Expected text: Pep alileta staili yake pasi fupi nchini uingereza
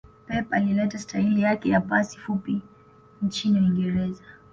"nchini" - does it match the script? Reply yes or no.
yes